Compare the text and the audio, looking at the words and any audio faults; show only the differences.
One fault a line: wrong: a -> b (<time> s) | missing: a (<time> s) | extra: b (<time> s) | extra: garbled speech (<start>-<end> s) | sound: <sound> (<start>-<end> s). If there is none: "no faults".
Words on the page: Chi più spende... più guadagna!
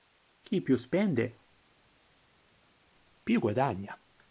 no faults